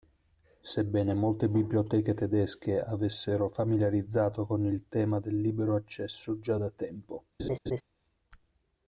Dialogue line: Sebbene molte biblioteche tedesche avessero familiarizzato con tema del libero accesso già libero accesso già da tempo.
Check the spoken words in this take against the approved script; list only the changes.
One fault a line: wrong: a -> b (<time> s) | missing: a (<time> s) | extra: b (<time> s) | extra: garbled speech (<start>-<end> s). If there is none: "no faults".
extra: il (4.7 s)
missing: libero accesso già (6.6 s)